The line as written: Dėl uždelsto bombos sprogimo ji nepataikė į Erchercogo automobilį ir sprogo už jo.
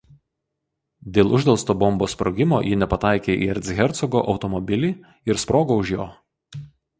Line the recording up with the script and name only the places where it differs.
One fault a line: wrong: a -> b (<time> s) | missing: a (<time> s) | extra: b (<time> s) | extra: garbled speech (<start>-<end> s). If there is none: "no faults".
no faults